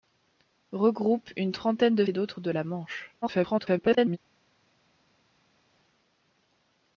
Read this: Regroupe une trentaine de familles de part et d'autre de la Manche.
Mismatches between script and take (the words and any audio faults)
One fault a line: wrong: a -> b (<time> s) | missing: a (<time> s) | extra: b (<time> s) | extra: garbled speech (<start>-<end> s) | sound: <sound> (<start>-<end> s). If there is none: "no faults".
missing: familles de part (2.1 s)
extra: garbled speech (3.2-4.2 s)